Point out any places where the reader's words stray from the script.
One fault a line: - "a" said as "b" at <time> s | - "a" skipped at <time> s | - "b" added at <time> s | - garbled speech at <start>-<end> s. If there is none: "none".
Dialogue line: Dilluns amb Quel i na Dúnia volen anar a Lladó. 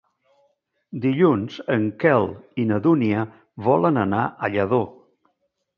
- "amb" said as "en" at 1.8 s